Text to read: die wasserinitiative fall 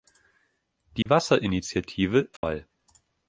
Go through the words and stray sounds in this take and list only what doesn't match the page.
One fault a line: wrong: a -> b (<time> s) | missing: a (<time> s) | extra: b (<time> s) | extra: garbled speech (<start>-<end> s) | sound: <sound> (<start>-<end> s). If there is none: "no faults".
sound: dropout (1.0-1.1 s)
sound: dropout (2.4-2.4 s)